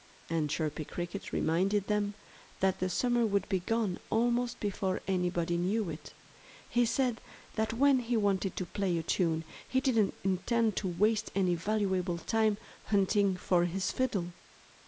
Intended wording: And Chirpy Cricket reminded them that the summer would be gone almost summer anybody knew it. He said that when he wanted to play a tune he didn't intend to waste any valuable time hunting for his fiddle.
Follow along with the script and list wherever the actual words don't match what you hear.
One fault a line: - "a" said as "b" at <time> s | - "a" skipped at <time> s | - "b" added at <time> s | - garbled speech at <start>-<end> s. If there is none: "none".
- "summer" said as "before" at 4.6 s